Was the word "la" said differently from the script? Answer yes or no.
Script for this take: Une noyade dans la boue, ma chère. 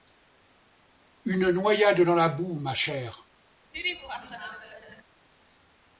no